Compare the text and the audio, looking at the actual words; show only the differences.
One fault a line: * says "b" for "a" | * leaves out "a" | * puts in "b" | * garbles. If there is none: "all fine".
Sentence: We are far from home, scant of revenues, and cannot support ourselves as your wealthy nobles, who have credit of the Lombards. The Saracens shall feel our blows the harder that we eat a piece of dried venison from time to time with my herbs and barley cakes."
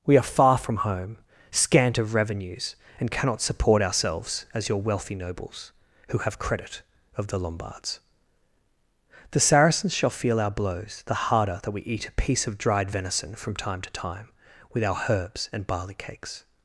* says "our" for "my"